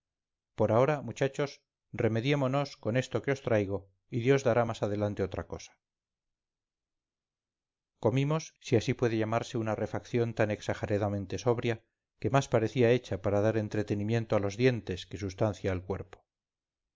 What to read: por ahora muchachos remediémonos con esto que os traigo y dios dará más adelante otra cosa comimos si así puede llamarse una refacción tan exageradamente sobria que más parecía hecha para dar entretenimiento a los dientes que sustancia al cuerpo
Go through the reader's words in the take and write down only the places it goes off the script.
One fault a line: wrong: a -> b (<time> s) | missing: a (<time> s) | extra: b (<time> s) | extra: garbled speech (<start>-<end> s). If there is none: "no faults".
no faults